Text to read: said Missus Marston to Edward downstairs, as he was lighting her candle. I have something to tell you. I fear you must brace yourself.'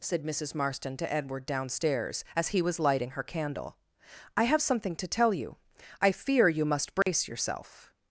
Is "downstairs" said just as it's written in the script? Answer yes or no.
yes